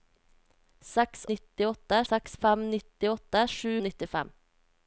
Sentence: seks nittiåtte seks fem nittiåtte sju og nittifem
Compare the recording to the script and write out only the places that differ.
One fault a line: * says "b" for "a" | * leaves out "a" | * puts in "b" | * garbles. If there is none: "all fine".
all fine